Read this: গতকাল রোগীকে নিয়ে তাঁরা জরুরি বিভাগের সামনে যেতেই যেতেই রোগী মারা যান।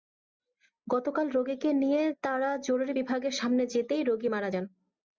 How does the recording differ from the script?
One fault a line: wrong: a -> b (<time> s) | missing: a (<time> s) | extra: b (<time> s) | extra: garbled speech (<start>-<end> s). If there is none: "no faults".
missing: যেতেই (4.0 s)